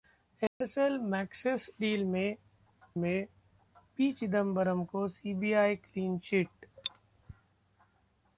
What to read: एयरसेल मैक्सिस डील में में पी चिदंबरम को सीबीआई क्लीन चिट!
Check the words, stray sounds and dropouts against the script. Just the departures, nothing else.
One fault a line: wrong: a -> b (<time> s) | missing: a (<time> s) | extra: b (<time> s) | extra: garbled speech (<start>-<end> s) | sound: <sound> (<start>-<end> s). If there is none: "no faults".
sound: dropout (0.5-0.6 s)